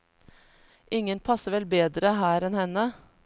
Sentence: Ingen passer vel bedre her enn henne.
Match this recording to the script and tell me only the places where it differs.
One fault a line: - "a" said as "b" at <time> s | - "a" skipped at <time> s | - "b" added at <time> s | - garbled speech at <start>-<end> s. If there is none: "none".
none